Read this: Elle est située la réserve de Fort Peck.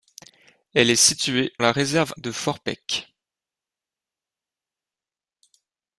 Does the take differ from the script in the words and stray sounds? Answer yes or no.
no